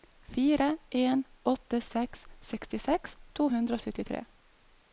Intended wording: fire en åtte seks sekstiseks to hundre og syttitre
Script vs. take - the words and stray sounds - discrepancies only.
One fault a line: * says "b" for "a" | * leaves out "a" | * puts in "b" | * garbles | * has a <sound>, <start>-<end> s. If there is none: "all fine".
all fine